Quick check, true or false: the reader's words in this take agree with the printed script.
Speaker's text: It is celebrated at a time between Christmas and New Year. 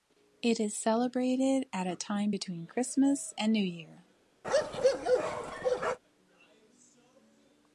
true